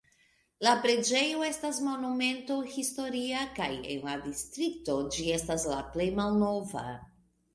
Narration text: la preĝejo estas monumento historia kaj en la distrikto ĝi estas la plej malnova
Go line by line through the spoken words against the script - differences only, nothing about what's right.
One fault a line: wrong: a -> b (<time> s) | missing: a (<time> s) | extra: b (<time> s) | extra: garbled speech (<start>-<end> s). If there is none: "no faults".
no faults